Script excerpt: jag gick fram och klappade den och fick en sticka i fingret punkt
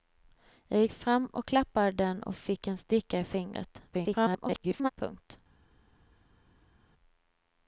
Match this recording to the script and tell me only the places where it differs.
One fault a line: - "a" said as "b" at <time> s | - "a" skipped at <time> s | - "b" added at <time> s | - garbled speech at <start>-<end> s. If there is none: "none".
- garbled speech at 3.9-4.9 s